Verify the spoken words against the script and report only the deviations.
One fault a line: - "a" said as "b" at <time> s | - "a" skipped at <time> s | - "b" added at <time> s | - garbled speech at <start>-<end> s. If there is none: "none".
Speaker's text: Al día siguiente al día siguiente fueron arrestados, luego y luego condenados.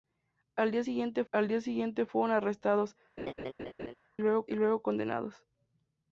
none